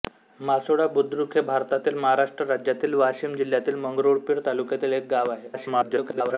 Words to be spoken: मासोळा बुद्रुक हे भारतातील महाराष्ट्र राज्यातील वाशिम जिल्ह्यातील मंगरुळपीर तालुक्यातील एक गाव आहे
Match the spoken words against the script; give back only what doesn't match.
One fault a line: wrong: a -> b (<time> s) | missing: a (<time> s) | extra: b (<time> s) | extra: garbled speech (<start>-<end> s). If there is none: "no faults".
extra: garbled speech (5.5-6.4 s)